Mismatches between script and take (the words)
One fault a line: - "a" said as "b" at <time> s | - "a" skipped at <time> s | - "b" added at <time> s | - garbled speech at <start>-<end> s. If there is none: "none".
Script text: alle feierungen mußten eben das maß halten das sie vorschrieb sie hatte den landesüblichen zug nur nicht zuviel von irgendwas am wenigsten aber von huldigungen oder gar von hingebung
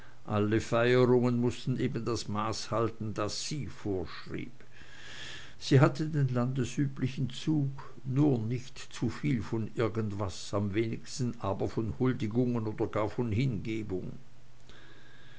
none